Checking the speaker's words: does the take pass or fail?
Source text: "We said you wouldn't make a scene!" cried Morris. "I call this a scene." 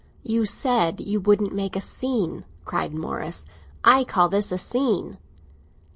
fail